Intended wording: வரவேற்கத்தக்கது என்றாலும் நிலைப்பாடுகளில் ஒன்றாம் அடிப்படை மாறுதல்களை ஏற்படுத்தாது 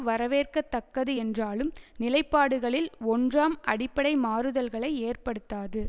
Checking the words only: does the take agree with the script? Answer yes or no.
yes